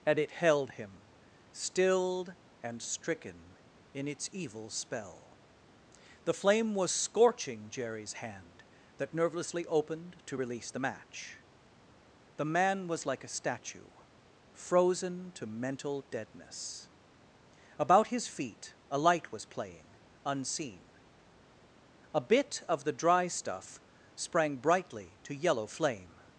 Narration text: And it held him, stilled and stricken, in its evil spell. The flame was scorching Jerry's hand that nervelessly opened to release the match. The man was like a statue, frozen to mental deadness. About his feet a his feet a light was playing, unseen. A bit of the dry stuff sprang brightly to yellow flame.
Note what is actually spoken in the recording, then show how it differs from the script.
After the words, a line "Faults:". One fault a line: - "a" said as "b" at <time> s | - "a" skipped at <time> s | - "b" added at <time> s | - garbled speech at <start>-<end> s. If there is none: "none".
And it held him, stilled and stricken, in its evil spell. The flame was scorching Jerry's hand that nervelessly opened to release the match. The man was like a statue, frozen to mental deadness. About his feet a light was playing, unseen. A bit of the dry stuff sprang brightly to yellow flame.
Faults:
- "his feet a" skipped at 19.0 s